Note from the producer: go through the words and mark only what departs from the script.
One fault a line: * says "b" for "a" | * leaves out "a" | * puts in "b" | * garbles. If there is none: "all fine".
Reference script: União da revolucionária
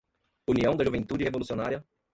* puts in "juventude"